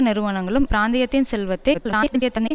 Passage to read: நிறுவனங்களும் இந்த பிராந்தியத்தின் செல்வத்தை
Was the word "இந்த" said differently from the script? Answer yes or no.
yes